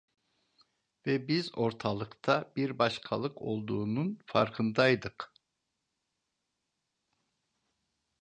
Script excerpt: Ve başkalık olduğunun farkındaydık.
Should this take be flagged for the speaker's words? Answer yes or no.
yes